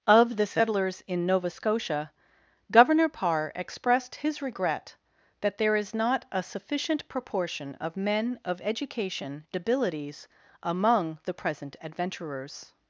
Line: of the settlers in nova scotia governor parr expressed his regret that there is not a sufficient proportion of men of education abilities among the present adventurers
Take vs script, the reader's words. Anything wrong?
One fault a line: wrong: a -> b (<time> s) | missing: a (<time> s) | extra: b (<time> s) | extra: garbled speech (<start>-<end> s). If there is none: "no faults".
no faults